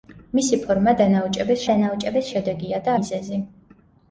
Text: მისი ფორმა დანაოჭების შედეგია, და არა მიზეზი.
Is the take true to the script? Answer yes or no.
no